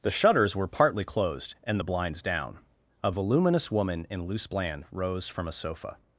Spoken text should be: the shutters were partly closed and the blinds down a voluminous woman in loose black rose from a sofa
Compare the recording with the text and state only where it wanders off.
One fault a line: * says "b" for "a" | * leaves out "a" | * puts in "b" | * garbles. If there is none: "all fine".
* says "bland" for "black"